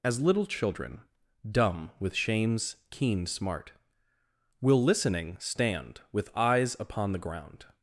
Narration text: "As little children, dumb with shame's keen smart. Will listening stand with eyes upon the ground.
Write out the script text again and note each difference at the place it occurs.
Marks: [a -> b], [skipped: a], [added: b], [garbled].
"As little children, dumb with shame's keen smart. Will listening stand with eyes upon the ground.